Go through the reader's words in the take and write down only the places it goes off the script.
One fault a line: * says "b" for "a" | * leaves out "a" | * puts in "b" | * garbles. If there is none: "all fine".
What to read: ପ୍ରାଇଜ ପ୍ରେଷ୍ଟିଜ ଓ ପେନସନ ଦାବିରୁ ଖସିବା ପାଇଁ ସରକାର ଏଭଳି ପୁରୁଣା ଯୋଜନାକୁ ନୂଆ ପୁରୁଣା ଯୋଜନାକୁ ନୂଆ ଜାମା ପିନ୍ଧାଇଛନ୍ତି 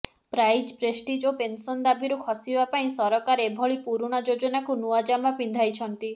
* leaves out "ପୁରୁଣା ଯୋଜନାକୁ ନୂଆ"